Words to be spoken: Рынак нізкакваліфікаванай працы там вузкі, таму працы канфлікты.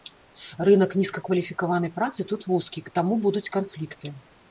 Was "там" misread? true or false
true